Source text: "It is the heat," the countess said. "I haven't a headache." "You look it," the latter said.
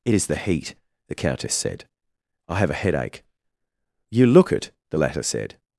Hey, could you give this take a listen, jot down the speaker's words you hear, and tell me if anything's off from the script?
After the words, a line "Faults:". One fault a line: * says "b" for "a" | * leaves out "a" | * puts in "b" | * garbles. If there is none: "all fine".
"It is the heat," the countess said. "I have a headache." "You look it," the latter said.
Faults:
* says "have" for "haven't"